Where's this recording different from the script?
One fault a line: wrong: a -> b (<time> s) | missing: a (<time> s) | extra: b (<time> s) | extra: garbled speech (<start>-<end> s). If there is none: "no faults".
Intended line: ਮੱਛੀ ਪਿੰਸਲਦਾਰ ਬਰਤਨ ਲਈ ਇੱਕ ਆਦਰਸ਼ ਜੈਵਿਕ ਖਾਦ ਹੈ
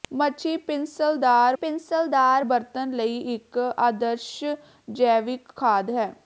extra: ਪਿੰਸਲਦਾਰ (1.5 s)